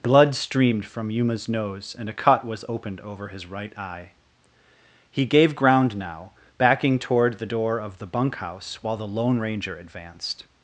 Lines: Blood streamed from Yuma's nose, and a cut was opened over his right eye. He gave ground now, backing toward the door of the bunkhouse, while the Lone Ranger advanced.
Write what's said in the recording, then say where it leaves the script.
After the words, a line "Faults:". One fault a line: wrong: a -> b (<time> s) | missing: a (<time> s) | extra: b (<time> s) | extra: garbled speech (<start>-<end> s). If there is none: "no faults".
Blood streamed from Yuma's nose, and a cut was opened over his right eye. He gave ground now, backing toward the door of the bunkhouse, while the Lone Ranger advanced.
Faults:
no faults